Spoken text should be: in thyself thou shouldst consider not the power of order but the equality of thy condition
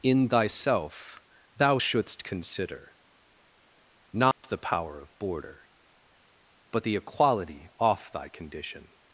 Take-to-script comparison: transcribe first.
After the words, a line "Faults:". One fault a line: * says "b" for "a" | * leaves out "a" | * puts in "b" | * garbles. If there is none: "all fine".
in thyself thou shouldst consider not the power of border but the equality off thy condition
Faults:
* says "border" for "order"
* says "off" for "of"